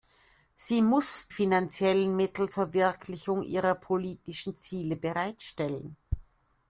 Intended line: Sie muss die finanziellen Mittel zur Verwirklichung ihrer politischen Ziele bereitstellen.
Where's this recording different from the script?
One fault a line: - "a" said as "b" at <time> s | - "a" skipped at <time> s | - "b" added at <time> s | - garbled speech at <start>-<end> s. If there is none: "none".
- "die" skipped at 1.3 s
- "zur" skipped at 2.5 s